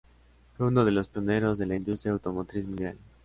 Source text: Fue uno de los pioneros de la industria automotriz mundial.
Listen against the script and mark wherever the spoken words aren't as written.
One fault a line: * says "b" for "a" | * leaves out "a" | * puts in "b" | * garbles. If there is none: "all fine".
all fine